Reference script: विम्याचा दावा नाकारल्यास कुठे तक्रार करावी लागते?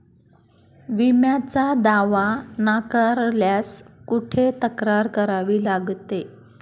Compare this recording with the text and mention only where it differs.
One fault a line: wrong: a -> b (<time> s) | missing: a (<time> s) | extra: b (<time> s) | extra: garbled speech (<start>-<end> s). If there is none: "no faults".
no faults